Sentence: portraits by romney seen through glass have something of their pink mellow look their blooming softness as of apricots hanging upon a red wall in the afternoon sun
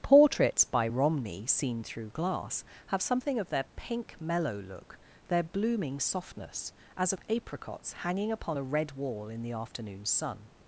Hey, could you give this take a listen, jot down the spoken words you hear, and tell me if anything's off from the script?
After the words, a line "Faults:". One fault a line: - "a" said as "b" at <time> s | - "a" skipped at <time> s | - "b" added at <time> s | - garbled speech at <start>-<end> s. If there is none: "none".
portraits by romney seen through glass have something of their pink mellow look their blooming softness as of apricots hanging upon a red wall in the afternoon sun
Faults:
none